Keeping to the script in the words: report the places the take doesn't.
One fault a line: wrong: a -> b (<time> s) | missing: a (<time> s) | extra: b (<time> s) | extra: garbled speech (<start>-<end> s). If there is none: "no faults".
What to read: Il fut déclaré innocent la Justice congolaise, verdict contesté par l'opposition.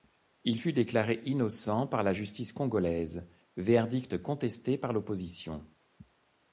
extra: par (1.9 s)